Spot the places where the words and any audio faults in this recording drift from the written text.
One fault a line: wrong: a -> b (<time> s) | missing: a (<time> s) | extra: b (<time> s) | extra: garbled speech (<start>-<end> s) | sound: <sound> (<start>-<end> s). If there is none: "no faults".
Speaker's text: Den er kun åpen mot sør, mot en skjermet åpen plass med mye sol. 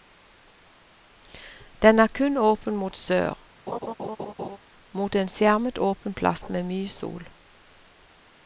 sound: laugh (3.7-4.6 s)